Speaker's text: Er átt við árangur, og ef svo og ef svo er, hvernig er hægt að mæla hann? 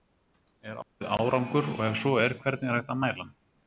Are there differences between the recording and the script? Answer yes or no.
yes